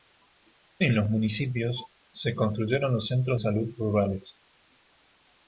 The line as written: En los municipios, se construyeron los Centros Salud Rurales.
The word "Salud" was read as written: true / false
true